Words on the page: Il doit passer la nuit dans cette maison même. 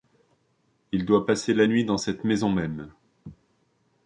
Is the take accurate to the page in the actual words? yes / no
yes